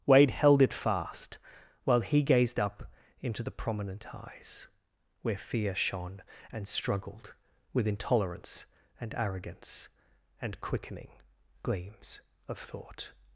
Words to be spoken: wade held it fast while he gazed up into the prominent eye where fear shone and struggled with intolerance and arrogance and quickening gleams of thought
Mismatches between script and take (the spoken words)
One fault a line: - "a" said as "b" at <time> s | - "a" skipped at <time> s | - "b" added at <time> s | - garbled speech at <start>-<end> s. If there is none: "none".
- "eye" said as "eyes" at 4.1 s